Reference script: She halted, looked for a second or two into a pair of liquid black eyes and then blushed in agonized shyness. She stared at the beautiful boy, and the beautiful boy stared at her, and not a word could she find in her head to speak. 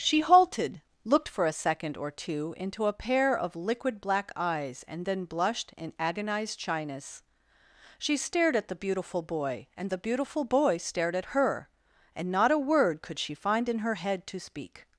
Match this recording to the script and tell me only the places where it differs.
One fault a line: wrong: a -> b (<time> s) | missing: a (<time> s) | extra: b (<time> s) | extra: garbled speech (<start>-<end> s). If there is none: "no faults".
no faults